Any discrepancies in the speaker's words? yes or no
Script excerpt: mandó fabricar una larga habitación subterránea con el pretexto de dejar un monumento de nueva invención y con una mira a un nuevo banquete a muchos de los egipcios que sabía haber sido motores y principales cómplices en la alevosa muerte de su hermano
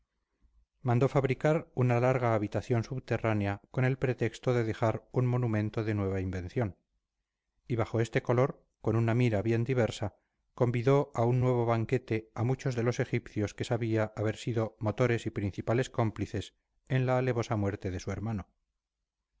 yes